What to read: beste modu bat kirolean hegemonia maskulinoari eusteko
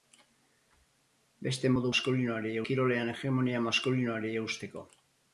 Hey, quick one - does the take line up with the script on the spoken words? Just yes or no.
no